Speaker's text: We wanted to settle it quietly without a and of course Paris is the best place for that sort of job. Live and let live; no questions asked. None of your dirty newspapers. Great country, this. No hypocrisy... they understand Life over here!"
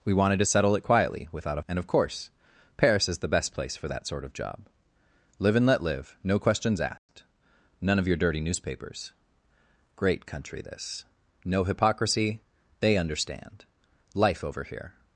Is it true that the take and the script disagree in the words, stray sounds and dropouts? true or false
true